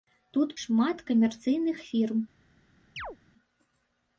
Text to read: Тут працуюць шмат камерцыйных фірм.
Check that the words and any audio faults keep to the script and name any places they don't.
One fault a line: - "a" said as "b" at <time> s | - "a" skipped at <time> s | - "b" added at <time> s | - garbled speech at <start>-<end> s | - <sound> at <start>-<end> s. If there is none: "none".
- "працуюць" skipped at 0.5 s
- chirp at 3.0-3.2 s